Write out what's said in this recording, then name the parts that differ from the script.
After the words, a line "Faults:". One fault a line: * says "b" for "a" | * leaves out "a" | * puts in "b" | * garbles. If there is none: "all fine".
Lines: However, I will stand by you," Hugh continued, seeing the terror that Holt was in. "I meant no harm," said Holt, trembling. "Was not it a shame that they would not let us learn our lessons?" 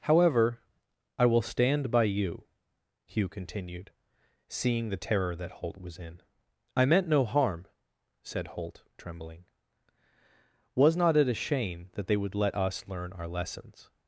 However, I will stand by you," Hugh continued, seeing the terror that Holt was in. "I meant no harm," said Holt, trembling. "Was not it a shame that they would let us learn our lessons?"
Faults:
* leaves out "not"